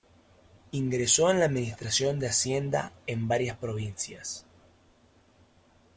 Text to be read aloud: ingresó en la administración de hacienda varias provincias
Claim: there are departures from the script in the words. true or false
true